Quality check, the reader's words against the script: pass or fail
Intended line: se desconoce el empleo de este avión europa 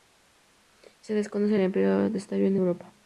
pass